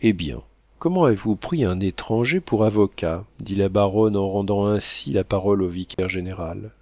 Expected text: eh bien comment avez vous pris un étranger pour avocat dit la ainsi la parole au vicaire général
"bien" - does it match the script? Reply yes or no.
yes